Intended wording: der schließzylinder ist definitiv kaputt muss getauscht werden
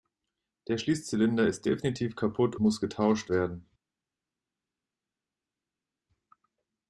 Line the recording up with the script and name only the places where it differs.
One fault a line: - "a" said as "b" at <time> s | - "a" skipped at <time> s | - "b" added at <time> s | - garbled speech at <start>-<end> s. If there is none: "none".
none